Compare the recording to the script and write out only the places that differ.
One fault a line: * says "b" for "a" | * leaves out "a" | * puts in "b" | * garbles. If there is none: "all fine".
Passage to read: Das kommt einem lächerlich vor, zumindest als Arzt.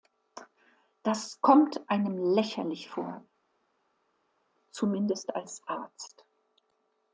all fine